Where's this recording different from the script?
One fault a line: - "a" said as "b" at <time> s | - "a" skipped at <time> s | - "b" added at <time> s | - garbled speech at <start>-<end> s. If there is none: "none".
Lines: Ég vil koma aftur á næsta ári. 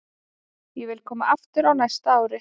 none